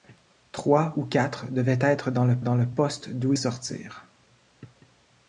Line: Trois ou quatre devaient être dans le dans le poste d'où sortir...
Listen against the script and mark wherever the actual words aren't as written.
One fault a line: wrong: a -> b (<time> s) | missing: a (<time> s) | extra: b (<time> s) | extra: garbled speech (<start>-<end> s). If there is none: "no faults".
no faults